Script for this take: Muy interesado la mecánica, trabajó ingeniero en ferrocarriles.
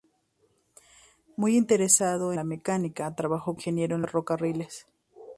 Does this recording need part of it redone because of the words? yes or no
no